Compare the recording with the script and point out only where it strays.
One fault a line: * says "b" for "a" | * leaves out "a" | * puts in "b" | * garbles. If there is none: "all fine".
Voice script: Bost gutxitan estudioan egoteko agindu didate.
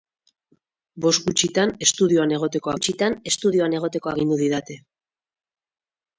* puts in "gutxitan estudioan egoteko"